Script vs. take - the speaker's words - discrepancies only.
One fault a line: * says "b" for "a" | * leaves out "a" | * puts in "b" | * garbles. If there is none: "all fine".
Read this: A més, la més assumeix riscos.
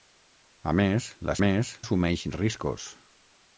all fine